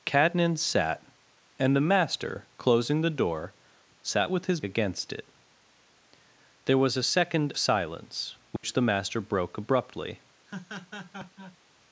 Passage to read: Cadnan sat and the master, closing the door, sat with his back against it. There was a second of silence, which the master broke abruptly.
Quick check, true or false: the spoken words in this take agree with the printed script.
false